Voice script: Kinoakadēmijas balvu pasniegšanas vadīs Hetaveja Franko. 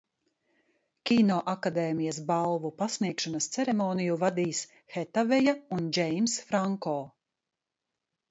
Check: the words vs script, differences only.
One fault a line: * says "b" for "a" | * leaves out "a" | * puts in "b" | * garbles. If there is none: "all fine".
* puts in "ceremoniju"
* puts in "un Džeimss"